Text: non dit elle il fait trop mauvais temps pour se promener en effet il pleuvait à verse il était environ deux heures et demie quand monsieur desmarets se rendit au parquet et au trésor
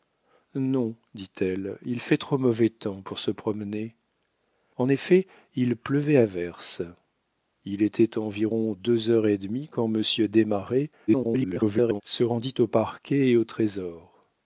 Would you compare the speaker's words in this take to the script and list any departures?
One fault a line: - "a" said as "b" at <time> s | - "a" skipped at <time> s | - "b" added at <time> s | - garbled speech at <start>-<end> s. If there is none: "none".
- garbled speech at 11.1-12.0 s